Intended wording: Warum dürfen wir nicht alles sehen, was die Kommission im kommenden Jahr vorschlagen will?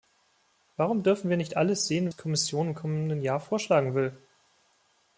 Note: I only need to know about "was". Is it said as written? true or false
false